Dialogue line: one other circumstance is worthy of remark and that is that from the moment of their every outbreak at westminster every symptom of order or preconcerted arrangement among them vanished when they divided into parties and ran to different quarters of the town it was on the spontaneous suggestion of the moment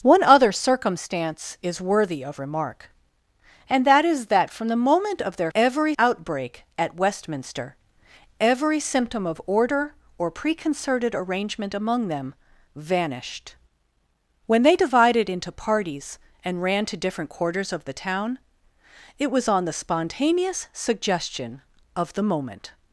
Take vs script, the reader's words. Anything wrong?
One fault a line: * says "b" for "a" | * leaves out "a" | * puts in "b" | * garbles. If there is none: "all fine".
all fine